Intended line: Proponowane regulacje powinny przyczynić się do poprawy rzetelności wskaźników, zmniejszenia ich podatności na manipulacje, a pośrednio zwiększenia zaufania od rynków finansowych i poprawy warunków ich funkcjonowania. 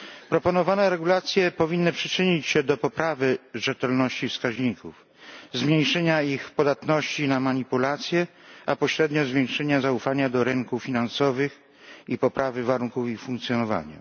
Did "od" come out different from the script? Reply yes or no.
yes